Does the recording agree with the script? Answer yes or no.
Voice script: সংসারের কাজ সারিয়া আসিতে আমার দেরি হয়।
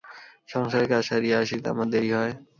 yes